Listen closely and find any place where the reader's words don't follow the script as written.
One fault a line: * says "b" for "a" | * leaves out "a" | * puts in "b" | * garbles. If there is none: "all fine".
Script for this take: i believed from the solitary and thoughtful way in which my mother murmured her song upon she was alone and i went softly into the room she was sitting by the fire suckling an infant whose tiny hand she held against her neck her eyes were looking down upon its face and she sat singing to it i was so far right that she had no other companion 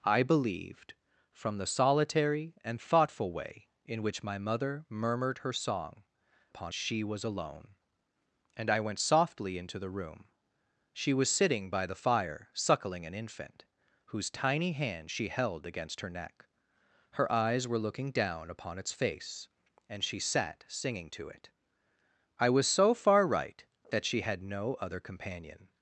all fine